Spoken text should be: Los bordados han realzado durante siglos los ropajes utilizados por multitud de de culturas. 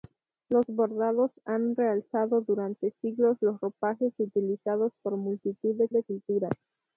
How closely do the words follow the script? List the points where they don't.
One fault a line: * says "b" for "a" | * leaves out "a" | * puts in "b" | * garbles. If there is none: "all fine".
all fine